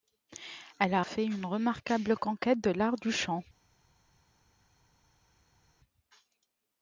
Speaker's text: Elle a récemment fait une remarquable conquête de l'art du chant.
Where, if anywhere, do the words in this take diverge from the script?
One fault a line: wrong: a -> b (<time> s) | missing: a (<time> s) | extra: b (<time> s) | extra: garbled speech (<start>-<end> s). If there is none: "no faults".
missing: récemment (1.0 s)